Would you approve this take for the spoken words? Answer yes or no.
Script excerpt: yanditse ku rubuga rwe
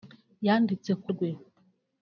no